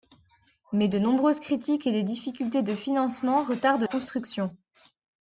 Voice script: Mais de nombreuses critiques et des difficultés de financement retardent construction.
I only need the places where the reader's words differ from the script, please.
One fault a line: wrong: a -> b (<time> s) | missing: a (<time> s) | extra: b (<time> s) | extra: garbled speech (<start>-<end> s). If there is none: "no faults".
no faults